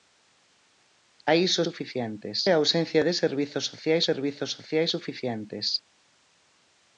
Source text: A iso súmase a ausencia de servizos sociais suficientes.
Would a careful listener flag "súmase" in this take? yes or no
yes